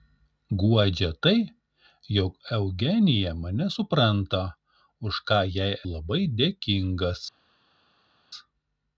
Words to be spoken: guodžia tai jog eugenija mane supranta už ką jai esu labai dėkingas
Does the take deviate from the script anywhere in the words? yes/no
yes